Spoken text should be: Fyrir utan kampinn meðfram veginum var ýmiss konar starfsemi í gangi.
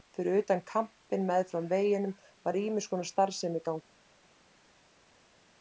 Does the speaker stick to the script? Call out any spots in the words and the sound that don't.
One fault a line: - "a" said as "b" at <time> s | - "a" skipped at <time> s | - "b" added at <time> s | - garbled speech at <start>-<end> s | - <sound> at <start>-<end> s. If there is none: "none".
none